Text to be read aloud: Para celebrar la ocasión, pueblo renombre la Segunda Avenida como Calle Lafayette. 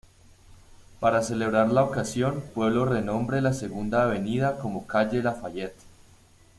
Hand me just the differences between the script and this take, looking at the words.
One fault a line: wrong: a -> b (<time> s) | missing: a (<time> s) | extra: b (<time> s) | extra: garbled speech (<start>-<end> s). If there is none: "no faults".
no faults